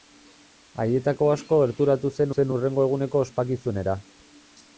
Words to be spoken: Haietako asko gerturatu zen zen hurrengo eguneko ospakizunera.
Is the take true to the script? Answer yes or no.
yes